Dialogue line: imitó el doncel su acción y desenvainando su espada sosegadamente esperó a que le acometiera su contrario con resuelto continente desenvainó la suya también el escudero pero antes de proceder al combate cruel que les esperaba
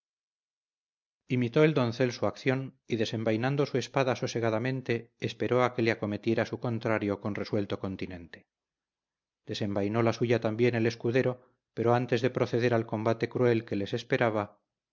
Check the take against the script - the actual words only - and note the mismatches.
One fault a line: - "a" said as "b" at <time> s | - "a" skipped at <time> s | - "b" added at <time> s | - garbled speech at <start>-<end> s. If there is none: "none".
none